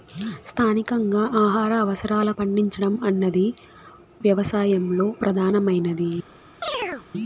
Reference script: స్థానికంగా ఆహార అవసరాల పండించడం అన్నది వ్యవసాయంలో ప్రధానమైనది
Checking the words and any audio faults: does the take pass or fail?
fail